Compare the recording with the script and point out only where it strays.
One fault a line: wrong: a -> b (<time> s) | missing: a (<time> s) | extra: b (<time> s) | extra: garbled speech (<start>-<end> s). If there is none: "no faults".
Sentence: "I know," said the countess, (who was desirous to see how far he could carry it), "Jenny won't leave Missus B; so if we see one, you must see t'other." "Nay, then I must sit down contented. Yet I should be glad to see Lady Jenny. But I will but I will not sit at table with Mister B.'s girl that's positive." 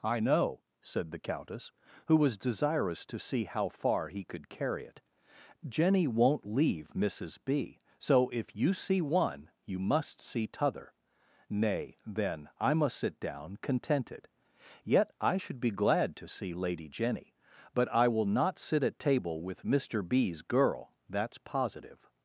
wrong: we -> you (8.6 s)
missing: but I will (18.3 s)